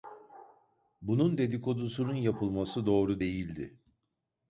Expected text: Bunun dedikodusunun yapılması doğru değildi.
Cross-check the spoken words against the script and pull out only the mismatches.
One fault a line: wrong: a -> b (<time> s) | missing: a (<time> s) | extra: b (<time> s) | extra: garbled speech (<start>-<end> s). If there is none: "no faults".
no faults